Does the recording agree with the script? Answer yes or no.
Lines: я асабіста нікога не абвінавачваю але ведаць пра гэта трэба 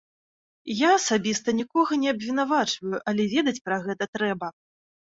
yes